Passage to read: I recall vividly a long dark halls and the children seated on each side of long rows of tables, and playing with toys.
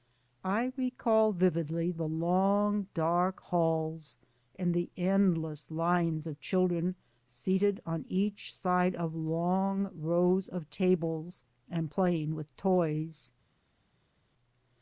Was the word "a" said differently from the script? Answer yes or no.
yes